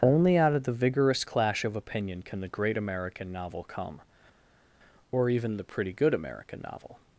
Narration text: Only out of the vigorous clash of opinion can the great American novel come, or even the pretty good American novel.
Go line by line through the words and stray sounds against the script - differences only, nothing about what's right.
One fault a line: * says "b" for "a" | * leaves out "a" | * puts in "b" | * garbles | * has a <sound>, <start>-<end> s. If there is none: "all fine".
all fine